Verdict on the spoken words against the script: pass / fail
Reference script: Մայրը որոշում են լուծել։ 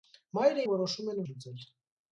pass